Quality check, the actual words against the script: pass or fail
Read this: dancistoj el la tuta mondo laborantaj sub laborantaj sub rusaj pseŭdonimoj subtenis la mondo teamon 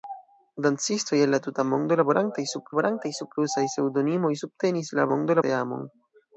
pass